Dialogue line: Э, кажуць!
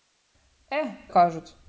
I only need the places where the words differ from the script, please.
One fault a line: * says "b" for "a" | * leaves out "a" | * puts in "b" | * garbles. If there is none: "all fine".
all fine